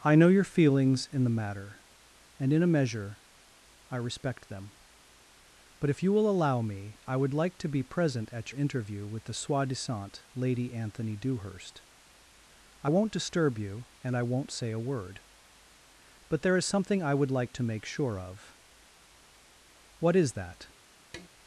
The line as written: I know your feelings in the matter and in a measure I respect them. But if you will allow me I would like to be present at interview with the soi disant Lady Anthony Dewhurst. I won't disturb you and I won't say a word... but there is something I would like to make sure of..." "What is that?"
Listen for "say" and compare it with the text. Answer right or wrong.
right